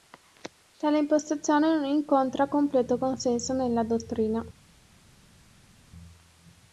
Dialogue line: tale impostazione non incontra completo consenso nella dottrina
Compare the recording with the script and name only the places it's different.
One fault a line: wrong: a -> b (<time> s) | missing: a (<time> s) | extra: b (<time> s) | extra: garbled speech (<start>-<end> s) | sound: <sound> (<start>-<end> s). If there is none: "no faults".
no faults